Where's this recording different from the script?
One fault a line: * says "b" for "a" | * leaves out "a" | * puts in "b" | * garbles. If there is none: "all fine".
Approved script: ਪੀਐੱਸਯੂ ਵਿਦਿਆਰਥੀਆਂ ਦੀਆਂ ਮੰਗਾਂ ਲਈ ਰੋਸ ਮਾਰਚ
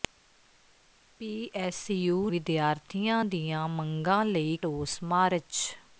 all fine